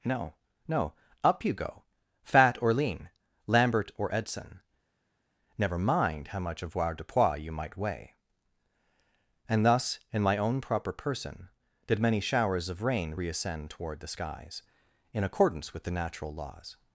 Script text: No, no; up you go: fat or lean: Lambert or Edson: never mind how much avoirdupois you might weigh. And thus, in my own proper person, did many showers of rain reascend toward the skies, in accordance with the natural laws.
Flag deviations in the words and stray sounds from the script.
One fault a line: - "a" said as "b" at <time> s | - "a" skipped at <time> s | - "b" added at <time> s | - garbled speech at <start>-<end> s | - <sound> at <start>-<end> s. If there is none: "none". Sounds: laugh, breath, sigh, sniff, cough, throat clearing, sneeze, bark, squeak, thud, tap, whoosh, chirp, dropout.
none